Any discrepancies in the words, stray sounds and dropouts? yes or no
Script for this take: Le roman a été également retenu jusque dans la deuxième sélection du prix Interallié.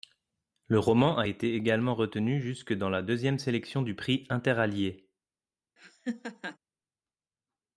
yes